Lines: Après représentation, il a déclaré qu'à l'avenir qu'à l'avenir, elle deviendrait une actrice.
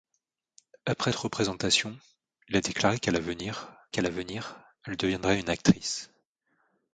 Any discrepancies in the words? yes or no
no